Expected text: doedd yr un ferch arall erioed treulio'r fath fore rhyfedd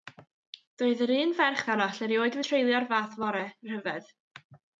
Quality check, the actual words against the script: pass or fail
pass